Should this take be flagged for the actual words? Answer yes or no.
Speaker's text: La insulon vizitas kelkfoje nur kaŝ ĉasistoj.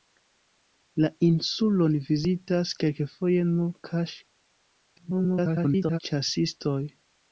yes